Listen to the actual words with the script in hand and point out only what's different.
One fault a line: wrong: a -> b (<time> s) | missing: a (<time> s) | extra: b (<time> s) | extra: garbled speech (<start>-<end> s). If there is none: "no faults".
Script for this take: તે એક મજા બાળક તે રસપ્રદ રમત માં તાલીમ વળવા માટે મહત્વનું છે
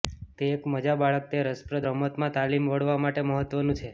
no faults